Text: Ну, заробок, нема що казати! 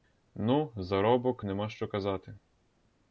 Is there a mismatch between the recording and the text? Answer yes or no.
no